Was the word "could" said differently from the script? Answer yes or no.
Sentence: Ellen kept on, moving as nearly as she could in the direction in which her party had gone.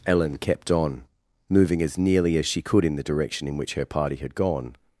no